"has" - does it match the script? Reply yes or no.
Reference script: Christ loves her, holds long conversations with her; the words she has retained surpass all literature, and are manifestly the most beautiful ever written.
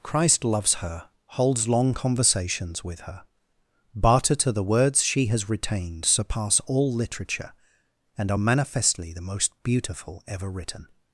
yes